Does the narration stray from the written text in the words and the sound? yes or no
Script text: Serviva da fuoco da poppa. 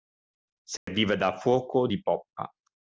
yes